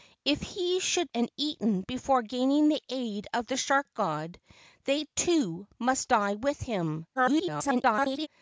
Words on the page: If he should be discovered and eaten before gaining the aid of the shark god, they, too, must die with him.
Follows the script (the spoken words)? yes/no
no